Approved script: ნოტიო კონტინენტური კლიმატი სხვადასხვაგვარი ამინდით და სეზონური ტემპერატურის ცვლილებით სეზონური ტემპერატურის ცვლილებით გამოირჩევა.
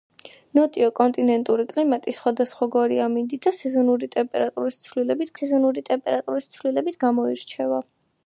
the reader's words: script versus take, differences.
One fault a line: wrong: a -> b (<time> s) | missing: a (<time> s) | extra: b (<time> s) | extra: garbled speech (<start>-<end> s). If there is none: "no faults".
no faults